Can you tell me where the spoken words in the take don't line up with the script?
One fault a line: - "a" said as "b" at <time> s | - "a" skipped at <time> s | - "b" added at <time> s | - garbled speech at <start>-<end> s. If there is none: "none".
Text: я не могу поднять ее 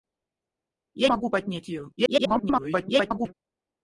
- "не" skipped at 1.1 s
- garbled speech at 2.0-3.3 s